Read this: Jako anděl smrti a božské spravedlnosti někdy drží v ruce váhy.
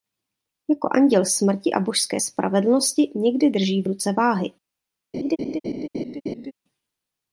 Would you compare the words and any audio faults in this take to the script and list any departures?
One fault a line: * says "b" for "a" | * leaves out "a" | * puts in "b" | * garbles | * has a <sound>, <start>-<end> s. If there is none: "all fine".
* has a laugh, 5.1-6.5 s